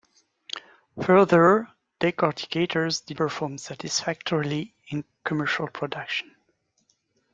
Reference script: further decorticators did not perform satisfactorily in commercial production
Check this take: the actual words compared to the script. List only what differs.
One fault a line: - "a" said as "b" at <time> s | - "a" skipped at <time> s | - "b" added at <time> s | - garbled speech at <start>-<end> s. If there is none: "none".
- "not" skipped at 3.2 s